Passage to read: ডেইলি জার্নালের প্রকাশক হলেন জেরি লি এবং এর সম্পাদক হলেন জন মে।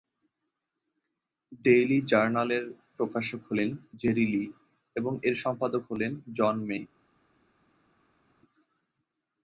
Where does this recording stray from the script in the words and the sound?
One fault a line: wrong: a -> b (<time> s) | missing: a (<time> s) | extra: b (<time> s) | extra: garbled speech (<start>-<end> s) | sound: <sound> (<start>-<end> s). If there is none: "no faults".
no faults